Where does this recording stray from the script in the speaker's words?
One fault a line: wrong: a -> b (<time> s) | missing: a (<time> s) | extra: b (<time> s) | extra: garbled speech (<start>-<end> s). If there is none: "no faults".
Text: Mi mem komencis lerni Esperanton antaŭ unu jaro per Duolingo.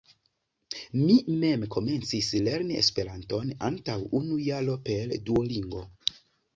no faults